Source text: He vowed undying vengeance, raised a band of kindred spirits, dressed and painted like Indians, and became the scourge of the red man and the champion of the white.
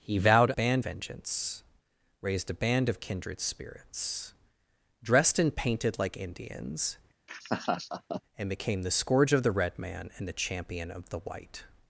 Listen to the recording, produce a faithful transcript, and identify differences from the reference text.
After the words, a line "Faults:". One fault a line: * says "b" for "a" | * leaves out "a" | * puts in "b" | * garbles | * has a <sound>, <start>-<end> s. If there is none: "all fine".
He vowed band vengeance, raised a band of kindred spirits, dressed and painted like Indians, and became the scourge of the red man and the champion of the white.
Faults:
* says "band" for "undying"
* has a laugh, 7.3-8.2 s